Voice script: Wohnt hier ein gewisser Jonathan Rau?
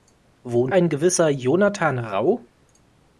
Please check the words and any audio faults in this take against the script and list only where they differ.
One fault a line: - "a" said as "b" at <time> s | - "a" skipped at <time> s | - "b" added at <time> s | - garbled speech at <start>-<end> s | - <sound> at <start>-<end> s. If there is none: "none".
- "hier" skipped at 0.8 s